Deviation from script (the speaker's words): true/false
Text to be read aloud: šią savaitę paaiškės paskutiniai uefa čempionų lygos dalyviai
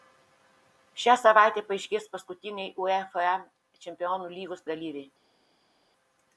false